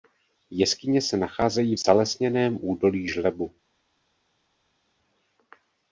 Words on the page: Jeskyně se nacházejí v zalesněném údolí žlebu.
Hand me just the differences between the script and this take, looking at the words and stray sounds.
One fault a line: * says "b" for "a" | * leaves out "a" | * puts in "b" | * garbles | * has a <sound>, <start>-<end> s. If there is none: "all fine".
all fine